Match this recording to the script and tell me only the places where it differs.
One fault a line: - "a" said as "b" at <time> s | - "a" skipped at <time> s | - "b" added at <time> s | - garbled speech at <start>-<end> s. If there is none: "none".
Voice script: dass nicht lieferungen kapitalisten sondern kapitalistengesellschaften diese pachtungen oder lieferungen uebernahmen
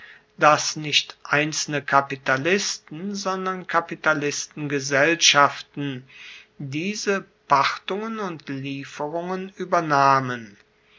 - "lieferungen" said as "einzelne" at 1.2 s
- "oder" said as "und" at 8.2 s